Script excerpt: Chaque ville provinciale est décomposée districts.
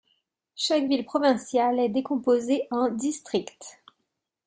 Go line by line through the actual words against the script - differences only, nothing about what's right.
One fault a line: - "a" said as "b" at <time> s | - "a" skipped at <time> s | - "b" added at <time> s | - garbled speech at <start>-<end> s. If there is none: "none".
- "en" added at 2.7 s